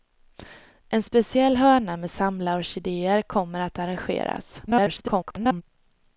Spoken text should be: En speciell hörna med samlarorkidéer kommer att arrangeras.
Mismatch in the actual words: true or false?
true